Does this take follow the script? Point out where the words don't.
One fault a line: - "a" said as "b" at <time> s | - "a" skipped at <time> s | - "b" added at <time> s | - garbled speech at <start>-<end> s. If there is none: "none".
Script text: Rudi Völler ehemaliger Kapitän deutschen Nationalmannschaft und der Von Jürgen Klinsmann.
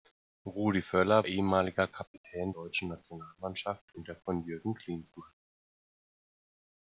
none